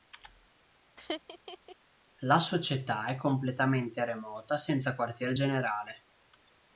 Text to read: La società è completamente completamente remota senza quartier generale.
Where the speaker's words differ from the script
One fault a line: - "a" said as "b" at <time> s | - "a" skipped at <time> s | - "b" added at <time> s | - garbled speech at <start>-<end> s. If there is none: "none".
- "completamente" skipped at 4.0 s